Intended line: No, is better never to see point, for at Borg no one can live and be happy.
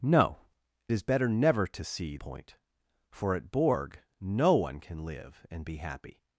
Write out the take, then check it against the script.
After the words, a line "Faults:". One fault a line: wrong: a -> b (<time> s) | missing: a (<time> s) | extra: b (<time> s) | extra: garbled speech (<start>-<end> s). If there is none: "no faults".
No, is better never to see point, for at Borg no one can live and be happy.
Faults:
no faults